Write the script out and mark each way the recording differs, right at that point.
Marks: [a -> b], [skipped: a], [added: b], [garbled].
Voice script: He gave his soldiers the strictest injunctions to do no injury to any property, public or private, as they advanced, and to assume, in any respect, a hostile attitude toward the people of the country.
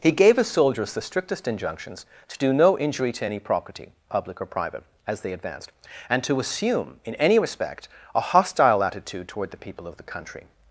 He gave his soldiers the strictest injunctions to do no injury to any property, public or private, as they advanced, and to assume, in any respect, a hostile attitude toward the people of the country.